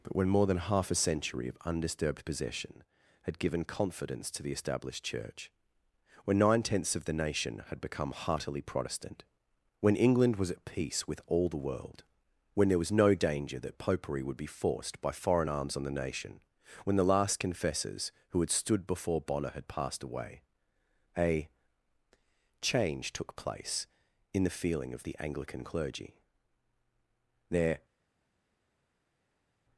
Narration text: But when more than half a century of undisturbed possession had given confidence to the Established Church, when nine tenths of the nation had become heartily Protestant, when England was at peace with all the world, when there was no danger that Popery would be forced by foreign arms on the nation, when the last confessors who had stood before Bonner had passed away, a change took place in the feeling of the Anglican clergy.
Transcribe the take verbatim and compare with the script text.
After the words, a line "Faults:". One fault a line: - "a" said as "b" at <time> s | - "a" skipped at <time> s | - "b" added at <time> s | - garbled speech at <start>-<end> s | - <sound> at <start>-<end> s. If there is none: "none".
But when more than half a century of undisturbed possession had given confidence to the Established Church, when nine tenths of the nation had become heartily Protestant, when England was at peace with all the world, when there was no danger that Popery would be forced by foreign arms on the nation, when the last confessors who had stood before Bonner had passed away, a change took place in the feeling of the Anglican clergy. Their
Faults:
- "Their" added at 27.5 s